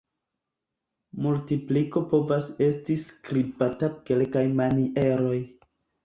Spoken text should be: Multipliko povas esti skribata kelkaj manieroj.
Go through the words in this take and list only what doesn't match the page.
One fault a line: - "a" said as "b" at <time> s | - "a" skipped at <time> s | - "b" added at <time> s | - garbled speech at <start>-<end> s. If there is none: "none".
none